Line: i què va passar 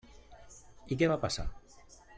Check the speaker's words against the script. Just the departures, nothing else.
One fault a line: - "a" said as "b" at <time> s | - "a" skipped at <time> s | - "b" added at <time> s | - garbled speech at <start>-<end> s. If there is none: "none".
none